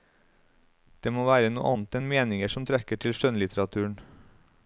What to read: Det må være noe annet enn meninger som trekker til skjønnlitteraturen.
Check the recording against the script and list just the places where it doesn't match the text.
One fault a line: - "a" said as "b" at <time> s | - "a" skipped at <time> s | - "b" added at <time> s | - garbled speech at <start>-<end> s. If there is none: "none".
none